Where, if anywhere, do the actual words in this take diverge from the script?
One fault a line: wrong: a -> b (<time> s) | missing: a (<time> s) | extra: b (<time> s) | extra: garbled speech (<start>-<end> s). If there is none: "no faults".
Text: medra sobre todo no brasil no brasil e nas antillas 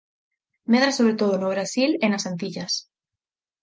missing: no brasil (1.9 s)